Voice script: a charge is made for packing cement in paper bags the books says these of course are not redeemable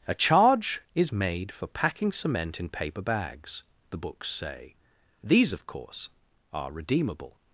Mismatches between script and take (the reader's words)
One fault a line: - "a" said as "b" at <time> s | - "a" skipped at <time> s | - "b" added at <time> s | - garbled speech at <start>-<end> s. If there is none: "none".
- "says" said as "say" at 4.3 s
- "not" skipped at 6.7 s